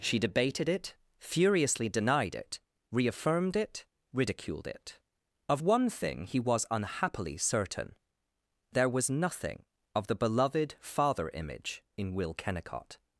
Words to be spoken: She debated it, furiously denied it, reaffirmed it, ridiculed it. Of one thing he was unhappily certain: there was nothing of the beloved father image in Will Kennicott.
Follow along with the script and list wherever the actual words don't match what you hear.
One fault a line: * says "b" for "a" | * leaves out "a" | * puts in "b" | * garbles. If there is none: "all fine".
all fine